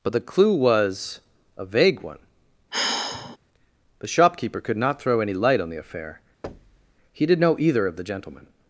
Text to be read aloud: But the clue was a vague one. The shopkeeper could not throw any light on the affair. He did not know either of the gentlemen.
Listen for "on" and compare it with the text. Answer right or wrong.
right